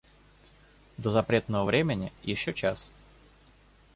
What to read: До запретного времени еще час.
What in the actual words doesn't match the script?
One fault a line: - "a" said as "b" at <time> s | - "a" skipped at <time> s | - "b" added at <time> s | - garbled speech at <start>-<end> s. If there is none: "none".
none